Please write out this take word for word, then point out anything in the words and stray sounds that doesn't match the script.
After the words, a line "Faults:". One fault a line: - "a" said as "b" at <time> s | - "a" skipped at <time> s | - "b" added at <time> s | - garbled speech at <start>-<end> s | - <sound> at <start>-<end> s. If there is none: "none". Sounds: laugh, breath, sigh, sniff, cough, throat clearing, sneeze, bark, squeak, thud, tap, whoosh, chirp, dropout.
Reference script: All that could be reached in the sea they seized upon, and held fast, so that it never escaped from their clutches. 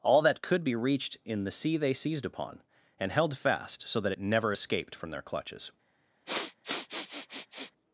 All that could be reached in the sea they seized upon, and held fast, so that it never escaped from their clutches.
Faults:
- sniff at 6.3-7.7 s